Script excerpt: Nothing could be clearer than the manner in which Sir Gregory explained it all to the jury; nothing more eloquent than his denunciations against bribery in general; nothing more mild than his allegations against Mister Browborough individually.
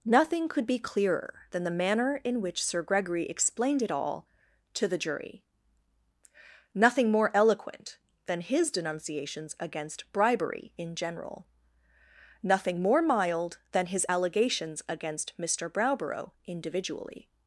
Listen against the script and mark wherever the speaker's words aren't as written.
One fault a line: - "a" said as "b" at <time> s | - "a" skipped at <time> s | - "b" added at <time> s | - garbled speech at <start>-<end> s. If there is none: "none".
none